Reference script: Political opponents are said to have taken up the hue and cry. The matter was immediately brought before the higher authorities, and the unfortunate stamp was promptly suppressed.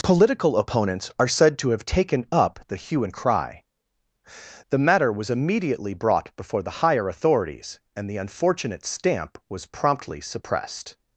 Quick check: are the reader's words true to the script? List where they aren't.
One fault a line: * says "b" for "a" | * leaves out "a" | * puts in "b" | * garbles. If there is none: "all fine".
all fine